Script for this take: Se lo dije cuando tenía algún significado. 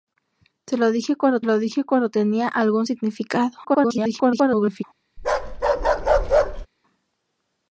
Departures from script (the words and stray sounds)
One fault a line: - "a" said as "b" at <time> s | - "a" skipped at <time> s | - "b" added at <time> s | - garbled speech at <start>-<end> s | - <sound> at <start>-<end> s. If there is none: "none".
- "lo dije cuando" added at 1.4 s
- garbled speech at 3.6-4.8 s
- bark at 5.2-6.7 s